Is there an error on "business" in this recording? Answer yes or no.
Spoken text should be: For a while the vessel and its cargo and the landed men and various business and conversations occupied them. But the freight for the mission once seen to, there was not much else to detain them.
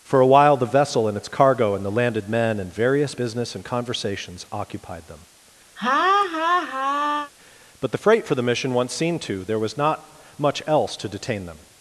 no